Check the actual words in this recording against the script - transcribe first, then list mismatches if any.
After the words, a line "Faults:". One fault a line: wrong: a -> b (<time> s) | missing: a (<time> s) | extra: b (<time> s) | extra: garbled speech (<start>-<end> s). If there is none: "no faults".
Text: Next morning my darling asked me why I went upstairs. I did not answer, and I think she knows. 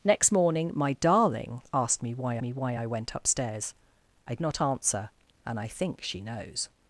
Next morning my darling asked me why me why I went upstairs. I not answer, and I think she knows.
Faults:
extra: me why (2.4 s)
missing: did (4.4 s)